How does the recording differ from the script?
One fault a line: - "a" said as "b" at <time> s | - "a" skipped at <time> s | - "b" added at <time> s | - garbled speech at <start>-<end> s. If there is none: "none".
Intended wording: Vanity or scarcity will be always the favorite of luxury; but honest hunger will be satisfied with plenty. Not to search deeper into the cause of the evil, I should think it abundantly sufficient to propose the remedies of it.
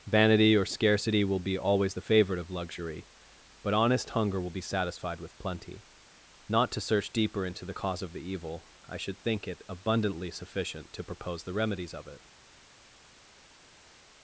none